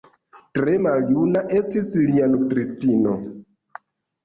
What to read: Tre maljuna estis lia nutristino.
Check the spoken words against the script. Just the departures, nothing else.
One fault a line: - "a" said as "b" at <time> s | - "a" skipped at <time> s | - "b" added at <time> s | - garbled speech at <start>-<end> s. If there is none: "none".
none